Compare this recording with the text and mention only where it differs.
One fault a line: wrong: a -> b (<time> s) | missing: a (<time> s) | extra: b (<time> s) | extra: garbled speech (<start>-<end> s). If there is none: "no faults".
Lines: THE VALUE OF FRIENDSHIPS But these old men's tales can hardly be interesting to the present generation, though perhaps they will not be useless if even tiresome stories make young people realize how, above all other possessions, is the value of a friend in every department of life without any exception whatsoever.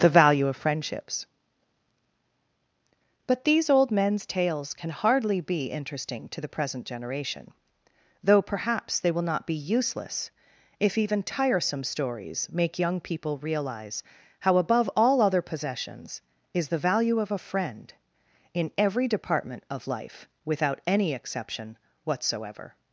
no faults